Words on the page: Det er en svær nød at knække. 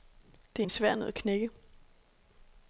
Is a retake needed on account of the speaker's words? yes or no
no